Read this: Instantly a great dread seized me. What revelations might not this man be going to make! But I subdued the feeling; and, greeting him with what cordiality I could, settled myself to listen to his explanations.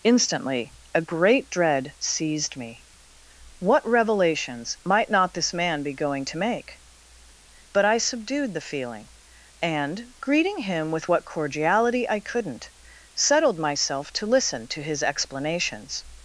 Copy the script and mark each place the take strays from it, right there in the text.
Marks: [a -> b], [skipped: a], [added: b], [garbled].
Instantly a great dread seized me. What revelations might not this man be going to make! But I subdued the feeling; and, greeting him with what cordiality I [could, -> couldn't] settled myself to listen to his explanations.